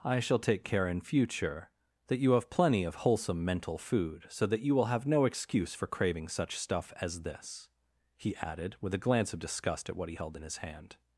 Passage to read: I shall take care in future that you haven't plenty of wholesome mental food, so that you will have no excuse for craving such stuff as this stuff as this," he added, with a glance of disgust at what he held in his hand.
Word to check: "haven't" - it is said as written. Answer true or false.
false